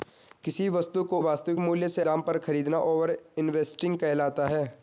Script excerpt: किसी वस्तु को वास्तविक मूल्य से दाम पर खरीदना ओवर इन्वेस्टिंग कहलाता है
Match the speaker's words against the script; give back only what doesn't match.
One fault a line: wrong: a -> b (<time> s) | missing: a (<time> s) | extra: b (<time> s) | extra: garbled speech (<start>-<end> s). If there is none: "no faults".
no faults